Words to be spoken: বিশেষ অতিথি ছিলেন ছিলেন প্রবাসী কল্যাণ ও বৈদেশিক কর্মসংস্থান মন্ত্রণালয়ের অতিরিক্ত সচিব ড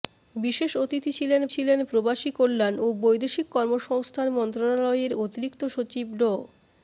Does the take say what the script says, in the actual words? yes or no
yes